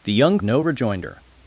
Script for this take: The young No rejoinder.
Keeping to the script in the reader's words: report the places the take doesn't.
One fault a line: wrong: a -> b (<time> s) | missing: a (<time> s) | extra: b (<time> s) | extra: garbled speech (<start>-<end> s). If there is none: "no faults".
no faults